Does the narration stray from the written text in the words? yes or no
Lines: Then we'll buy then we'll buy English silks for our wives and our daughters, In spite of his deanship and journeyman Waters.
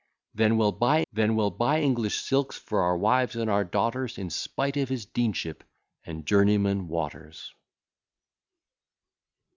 no